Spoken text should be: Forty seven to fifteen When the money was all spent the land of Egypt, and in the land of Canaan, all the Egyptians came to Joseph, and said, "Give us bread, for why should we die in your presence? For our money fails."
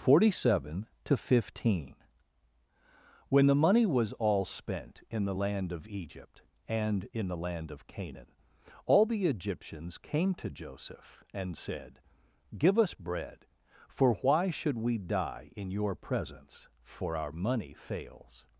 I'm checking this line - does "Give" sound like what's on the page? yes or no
yes